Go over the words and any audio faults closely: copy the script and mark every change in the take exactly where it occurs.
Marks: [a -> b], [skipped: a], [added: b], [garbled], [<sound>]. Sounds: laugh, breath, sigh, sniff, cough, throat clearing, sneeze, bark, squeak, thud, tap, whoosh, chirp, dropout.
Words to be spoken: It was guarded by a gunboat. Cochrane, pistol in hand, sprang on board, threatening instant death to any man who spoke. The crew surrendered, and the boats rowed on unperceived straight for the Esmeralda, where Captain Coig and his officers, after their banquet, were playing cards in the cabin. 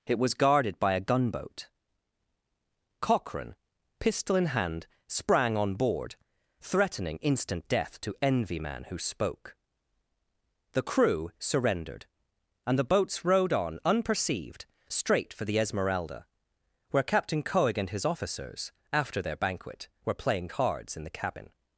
It was guarded by a gunboat. Cochrane, pistol in hand, sprang on board, threatening instant death to [any -> envy] man who spoke. The crew surrendered, and the boats rowed on unperceived straight for the Esmeralda, where Captain Coig and his officers, after their banquet, were playing cards in the cabin.